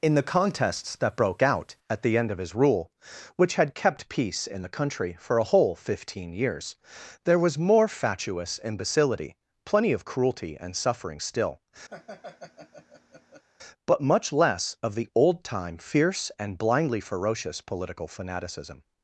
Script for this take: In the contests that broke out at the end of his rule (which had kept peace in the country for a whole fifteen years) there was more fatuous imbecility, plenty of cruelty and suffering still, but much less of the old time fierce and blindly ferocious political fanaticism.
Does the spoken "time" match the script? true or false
true